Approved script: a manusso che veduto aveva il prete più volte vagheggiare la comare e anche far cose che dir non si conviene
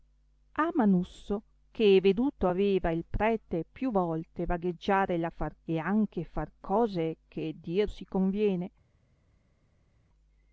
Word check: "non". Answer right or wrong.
wrong